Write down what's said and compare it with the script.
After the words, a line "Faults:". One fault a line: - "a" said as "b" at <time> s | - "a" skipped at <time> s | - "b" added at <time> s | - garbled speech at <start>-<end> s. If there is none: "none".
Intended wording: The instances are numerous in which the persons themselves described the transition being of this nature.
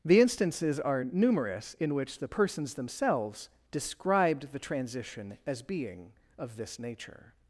The instances are numerous in which the persons themselves described the transition as being of this nature.
Faults:
- "as" added at 5.5 s